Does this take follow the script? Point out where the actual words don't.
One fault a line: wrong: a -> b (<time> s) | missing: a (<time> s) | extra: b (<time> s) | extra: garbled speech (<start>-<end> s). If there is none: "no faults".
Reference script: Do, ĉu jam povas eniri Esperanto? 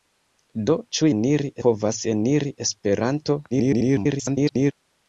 wrong: jam -> eniri (1.2 s)
extra: garbled speech (3.5-4.7 s)